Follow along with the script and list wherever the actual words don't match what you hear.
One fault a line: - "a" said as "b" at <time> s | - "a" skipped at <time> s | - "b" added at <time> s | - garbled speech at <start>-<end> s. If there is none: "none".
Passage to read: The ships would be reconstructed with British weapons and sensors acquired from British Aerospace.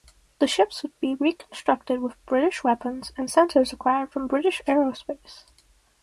none